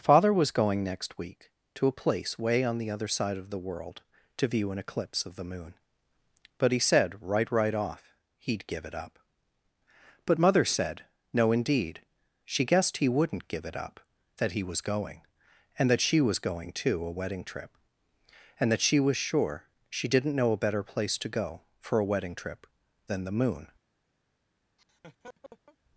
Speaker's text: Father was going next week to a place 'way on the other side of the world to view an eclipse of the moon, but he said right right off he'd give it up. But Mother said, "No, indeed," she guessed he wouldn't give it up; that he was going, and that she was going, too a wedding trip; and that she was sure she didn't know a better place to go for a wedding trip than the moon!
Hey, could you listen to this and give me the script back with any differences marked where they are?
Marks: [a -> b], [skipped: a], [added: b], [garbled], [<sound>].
Father was going next week to a place 'way on the other side of the world to view an eclipse of the moon, but he said right right off he'd give it up. But Mother said, "No, indeed," she guessed he wouldn't give it up; that he was going, and that she was going, too a wedding trip; and that she was sure she didn't know a better place to go for a wedding trip than the moon! [laugh]